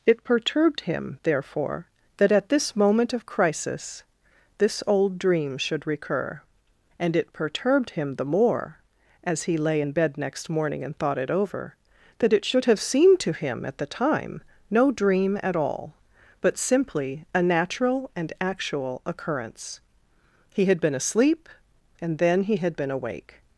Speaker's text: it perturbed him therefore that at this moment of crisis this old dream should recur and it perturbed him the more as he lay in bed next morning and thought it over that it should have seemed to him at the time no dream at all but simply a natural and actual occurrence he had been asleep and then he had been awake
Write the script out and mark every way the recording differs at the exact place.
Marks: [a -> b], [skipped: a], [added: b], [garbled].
it perturbed him therefore that at this moment of crisis this old dream should recur and it perturbed him the more as he lay in bed next morning and thought it over that it should have seemed to him at the time no dream at all but simply a natural and actual occurrence he had been asleep and then he had been awake